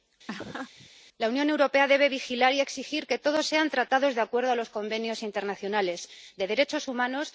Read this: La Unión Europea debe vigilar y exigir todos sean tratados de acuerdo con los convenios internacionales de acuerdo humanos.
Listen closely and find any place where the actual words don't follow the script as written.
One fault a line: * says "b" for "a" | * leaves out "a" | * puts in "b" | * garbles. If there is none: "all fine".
* puts in "que"
* says "derechos" for "acuerdo"